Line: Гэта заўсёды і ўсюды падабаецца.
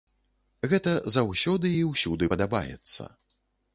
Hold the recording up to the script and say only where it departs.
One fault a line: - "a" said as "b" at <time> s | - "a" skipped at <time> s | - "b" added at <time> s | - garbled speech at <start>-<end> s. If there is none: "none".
none